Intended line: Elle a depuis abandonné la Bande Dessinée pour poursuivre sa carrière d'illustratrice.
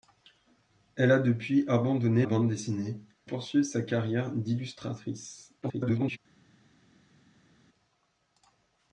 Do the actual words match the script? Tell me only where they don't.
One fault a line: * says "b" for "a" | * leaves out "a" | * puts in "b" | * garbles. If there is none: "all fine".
* leaves out "la"
* leaves out "pour"
* garbles